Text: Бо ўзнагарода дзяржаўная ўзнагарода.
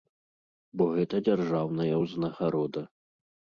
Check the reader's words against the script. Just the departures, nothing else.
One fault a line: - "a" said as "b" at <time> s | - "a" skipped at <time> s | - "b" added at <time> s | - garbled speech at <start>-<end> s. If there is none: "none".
- "ўзнагарода" said as "гэта" at 0.9 s